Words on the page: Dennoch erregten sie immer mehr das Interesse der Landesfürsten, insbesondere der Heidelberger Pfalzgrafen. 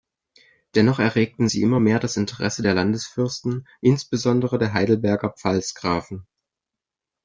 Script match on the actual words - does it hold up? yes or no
yes